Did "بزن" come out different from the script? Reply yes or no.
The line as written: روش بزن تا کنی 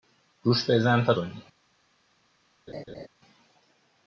no